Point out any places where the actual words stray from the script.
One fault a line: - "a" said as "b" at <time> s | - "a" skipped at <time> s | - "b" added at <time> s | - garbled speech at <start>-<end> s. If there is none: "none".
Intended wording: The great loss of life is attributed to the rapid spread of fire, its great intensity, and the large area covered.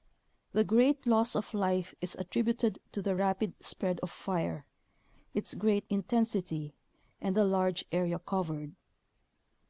none